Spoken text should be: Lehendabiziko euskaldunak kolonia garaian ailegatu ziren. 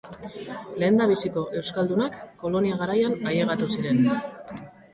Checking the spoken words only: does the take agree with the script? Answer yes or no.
yes